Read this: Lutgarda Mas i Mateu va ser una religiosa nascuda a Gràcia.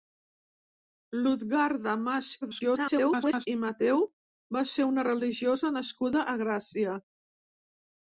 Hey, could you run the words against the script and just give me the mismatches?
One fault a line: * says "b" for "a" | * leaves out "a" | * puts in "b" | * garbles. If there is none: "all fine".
* garbles